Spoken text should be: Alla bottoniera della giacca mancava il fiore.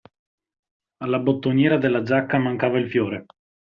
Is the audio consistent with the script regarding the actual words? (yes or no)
yes